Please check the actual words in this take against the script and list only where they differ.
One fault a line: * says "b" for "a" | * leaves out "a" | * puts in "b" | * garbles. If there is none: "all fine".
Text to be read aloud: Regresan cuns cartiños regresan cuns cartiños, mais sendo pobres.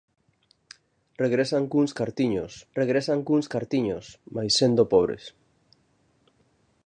all fine